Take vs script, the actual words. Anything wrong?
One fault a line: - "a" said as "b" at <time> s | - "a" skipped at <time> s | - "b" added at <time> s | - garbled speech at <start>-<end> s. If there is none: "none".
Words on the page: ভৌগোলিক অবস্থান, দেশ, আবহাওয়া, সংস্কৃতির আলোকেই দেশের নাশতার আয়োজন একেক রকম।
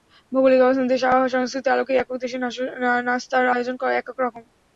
- "একেক" added at 2.0 s